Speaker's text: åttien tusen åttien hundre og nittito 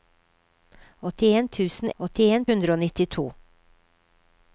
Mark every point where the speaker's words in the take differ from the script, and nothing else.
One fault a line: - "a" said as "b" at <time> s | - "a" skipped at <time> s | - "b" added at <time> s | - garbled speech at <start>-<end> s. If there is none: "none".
none